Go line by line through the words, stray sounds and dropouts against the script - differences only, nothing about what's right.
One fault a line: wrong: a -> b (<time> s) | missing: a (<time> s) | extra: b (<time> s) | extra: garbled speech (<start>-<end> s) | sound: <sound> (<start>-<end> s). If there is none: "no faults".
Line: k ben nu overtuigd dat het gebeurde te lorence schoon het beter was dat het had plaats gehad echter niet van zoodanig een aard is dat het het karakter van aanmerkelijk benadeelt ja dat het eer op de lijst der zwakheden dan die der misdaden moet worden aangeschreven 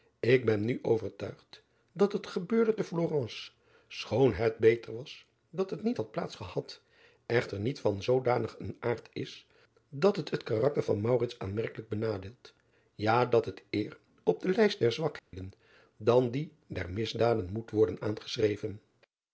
extra: niet (5.8 s)
sound: dropout (15.2-15.3 s)